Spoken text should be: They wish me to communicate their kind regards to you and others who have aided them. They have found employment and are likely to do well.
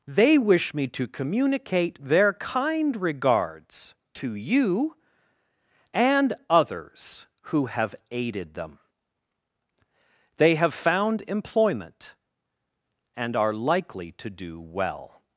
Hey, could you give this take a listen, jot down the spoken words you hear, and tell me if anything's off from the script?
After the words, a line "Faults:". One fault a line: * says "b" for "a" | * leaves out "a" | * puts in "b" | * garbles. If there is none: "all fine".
They wish me to communicate their kind regards to you and others who have aided them. They have found employment and are likely to do well.
Faults:
all fine